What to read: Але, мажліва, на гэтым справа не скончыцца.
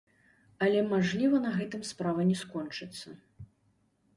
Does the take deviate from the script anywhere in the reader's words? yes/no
no